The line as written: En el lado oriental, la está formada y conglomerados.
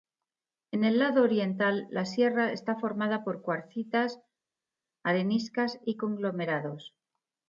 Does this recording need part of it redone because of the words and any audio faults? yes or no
yes